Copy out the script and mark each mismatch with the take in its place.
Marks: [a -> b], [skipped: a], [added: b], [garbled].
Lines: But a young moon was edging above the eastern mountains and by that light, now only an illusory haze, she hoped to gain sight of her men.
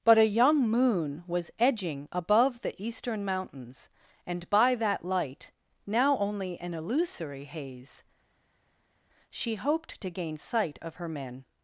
But a young moon was edging above the eastern mountains and by that light, now only an illusory haze, she hoped to gain sight of her men.